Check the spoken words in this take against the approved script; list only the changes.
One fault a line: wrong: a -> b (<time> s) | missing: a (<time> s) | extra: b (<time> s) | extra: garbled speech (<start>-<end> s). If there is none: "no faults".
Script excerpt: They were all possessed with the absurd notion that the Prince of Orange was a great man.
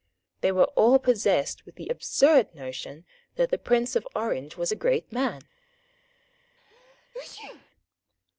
no faults